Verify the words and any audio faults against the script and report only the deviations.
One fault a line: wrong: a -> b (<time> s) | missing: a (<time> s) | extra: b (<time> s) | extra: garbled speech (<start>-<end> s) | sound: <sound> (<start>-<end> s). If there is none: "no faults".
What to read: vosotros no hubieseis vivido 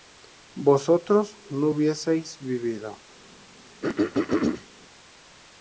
sound: throat clearing (3.8-4.7 s)